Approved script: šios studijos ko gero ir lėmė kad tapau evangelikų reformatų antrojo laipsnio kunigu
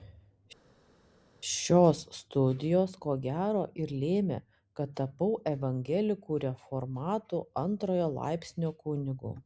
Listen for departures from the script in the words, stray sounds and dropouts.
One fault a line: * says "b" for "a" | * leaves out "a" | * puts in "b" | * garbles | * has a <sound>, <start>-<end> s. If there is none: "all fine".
all fine